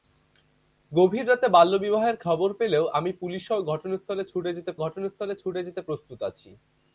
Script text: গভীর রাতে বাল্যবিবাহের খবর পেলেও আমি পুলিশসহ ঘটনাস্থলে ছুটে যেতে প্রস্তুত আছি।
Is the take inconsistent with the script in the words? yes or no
yes